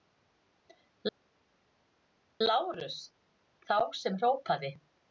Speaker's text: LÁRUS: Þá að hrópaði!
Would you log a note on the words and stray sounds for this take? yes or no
yes